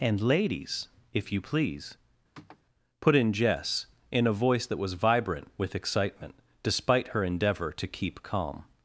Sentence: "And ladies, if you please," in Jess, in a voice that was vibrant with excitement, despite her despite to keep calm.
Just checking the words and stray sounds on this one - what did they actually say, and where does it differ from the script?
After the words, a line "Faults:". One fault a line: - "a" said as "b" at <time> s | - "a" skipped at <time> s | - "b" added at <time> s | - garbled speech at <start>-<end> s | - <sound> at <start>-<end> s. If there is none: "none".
"And ladies, if you please," put in Jess, in a voice that was vibrant with excitement, despite her endeavor to keep calm.
Faults:
- sniff at 2.3-2.6 s
- "put" added at 3.0 s
- "despite" said as "endeavor" at 7.2 s